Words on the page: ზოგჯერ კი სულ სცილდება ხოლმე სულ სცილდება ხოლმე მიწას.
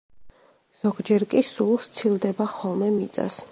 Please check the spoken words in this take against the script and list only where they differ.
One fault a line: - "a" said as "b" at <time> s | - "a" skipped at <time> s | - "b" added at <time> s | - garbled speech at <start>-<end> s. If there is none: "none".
- "სულ სცილდება ხოლმე" skipped at 2.9 s